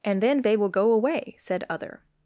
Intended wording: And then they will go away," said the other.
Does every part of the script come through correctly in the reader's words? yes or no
no